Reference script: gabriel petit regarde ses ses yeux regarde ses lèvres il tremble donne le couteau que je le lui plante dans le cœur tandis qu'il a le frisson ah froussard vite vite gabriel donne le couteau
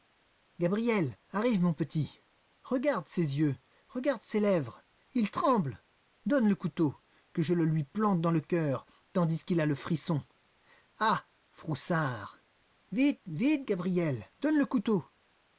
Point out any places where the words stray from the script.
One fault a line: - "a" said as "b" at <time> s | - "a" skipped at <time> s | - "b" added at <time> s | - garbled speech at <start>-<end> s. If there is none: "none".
- "arrive mon" added at 1.3 s
- "ses" skipped at 3.4 s